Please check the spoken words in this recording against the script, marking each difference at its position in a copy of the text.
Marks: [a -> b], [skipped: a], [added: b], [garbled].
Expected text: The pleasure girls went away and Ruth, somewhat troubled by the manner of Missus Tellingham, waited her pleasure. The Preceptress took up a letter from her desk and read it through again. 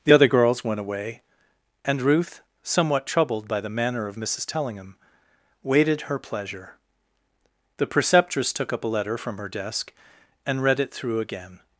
The [pleasure -> other] girls went away and Ruth, somewhat troubled by the manner of Missus Tellingham, waited her pleasure. The Preceptress took up a letter from her desk and read it through again.